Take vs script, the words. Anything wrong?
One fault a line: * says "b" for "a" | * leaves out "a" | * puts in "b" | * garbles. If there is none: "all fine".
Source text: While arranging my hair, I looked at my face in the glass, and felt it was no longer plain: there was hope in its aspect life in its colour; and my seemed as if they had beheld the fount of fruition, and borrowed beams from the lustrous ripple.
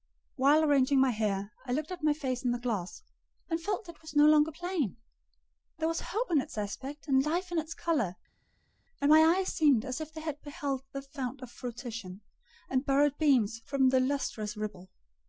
* puts in "and"
* puts in "eyes"